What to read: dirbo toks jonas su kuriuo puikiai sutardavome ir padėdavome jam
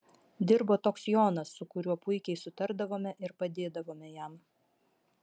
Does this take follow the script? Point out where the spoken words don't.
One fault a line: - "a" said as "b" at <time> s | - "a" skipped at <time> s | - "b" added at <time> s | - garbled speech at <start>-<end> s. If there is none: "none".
none